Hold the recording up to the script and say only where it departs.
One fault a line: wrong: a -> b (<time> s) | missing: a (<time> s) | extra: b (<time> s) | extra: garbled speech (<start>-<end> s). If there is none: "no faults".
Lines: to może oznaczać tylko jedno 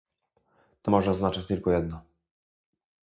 no faults